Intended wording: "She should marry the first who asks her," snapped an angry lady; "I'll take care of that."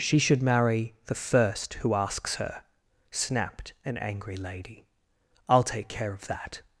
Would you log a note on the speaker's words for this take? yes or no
no